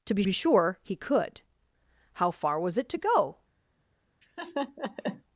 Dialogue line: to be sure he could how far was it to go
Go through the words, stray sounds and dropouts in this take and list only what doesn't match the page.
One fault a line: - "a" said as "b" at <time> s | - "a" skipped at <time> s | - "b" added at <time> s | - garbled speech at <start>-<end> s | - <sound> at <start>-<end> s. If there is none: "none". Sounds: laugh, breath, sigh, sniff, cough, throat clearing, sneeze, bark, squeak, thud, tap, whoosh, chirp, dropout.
- "be" added at 0.2 s
- laugh at 4.2-5.2 s